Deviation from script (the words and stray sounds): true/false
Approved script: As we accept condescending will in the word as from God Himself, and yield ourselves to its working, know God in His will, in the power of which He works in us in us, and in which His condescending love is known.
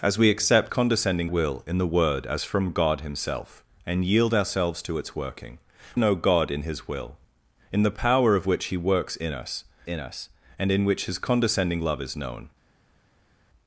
false